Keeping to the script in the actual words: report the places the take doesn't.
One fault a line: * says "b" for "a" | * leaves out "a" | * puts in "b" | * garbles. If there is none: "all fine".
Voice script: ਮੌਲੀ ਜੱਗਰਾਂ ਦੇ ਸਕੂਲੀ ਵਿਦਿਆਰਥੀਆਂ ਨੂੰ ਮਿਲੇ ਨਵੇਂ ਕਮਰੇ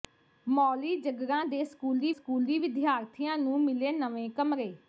* puts in "ਸਕੂਲੀ"